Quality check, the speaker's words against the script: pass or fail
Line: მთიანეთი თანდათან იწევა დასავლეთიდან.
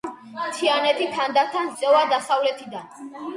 pass